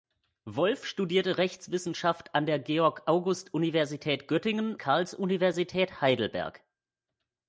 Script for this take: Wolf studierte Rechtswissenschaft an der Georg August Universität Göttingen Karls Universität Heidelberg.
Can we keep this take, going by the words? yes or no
yes